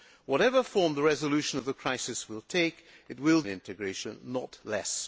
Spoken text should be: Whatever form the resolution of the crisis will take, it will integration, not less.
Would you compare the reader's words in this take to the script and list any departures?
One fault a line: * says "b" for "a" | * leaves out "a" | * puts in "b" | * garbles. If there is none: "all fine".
all fine